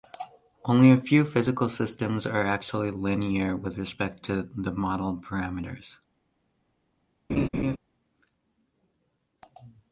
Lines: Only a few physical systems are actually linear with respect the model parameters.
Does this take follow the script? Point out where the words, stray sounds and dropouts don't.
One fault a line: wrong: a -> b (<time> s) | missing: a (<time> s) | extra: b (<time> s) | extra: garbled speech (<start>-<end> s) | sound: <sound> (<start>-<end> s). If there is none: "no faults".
extra: to (4.2 s)
sound: laugh (7.3-7.8 s)